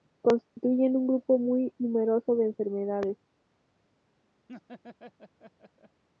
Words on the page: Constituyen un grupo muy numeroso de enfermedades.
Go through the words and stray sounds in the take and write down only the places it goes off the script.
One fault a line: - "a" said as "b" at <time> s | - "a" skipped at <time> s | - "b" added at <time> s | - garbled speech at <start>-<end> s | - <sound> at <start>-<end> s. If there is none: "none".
- dropout at 0.5-0.6 s
- laugh at 4.5-6.0 s